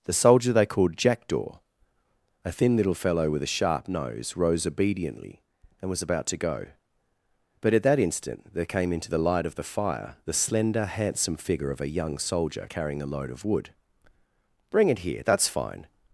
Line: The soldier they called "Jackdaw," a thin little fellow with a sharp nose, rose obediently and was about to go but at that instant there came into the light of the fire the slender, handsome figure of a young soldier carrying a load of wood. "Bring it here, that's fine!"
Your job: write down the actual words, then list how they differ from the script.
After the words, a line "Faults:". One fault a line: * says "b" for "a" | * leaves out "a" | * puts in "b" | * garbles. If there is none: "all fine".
The soldier they called "Jackdaw," a thin little fellow with a sharp nose, rose obediently and was about to go but at that instant there came into the light of the fire the slender, handsome figure of a young soldier carrying a load of wood. "Bring it here, that's fine!"
Faults:
all fine